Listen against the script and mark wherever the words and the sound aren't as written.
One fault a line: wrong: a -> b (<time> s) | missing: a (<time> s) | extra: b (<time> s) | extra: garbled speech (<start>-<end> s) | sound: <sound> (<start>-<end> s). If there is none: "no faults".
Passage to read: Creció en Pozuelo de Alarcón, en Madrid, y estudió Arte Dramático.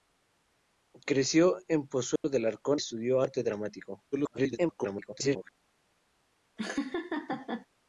sound: dropout (2.2-2.2 s)
missing: en Madrid y (2.8 s)
extra: garbled speech (4.1-5.5 s)
sound: laugh (6.6-7.7 s)